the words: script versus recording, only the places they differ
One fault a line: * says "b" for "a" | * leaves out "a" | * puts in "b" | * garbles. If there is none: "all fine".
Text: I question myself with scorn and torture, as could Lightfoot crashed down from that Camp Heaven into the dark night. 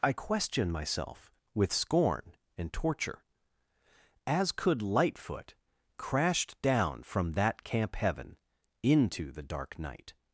all fine